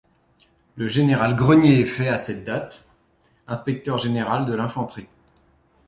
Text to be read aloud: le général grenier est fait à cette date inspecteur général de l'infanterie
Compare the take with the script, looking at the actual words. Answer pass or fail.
pass